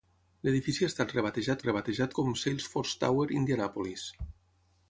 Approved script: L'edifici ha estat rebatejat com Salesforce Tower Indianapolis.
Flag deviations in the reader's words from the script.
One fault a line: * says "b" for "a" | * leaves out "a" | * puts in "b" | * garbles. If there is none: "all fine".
* puts in "rebatejat"